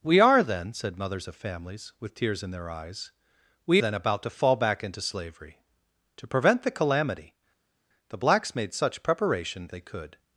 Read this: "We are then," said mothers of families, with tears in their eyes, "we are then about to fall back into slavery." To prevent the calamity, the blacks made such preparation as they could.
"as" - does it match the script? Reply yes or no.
no